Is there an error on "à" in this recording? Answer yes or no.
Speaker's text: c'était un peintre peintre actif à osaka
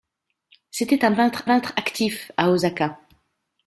no